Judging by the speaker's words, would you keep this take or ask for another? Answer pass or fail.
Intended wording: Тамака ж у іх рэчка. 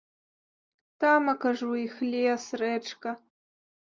fail